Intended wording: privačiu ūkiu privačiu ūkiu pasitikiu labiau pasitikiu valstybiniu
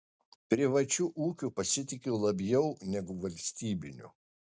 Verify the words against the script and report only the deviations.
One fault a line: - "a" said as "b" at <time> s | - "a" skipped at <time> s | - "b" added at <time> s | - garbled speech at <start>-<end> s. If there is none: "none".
- "privačiu ūkiu" skipped at 1.5 s
- "pasitikiu" said as "negu" at 2.9 s